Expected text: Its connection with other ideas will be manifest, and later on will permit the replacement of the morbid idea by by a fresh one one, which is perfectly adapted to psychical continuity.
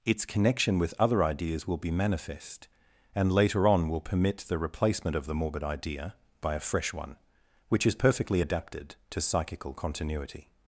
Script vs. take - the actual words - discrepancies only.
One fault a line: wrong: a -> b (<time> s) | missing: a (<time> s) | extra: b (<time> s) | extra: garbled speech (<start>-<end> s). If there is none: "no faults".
missing: by (6.5 s)
missing: one (7.2 s)